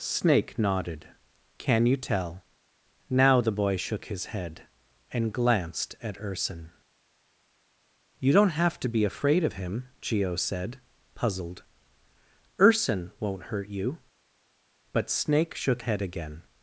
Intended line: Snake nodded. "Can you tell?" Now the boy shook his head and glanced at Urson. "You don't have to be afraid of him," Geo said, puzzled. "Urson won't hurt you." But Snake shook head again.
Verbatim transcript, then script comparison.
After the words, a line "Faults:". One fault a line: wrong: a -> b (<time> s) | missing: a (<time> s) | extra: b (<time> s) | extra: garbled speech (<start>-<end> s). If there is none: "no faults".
Snake nodded. "Can you tell?" Now the boy shook his head and glanced at Urson. "You don't have to be afraid of him," Geo said, puzzled. "Urson won't hurt you." But Snake shook head again.
Faults:
no faults